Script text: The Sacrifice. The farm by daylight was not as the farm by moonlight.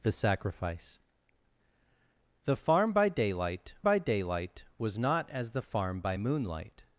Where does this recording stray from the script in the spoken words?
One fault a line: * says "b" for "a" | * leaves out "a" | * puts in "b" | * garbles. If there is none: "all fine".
* puts in "by daylight"